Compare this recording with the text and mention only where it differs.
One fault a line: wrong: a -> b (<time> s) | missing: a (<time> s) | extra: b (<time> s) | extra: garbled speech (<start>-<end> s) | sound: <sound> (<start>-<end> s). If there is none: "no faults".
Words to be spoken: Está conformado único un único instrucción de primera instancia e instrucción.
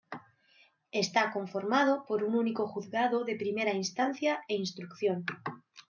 wrong: único -> por (2.0 s)
wrong: instrucción -> juzgado (2.7 s)